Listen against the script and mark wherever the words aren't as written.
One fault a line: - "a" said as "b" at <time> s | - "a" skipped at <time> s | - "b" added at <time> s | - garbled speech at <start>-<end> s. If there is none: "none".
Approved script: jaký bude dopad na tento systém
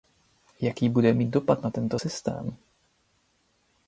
- "mít" added at 1.1 s